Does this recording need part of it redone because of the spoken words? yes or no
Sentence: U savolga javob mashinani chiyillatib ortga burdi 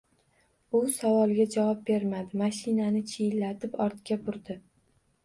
yes